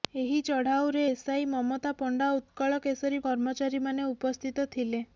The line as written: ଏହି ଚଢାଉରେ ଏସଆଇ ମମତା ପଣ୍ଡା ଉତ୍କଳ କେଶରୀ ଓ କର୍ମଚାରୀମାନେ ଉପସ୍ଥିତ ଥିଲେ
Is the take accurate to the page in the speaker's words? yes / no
yes